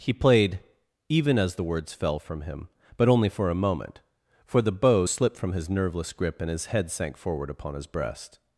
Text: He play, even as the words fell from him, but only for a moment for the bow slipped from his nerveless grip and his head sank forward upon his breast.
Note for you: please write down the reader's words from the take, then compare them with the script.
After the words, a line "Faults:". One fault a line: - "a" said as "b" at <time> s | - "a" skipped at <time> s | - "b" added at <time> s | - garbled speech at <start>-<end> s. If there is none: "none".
He played, even as the words fell from him, but only for a moment for the bow slipped from his nerveless grip and his head sank forward upon his breast.
Faults:
- "play" said as "played" at 0.1 s